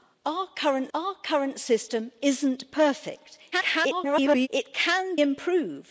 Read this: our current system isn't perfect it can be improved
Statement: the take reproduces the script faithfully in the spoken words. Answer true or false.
false